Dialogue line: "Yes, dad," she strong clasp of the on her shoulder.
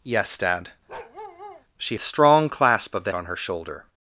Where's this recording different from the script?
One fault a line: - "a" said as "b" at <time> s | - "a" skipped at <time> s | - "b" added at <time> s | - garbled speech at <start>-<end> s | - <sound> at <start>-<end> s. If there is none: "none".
- bark at 0.9-1.7 s